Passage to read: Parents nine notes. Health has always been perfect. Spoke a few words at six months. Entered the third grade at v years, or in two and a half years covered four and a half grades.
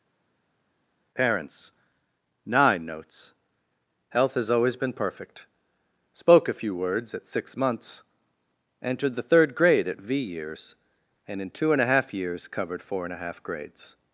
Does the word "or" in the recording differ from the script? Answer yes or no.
yes